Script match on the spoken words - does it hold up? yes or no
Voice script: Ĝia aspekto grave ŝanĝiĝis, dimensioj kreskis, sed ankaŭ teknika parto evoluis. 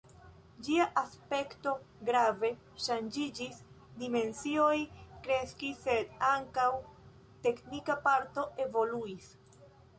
yes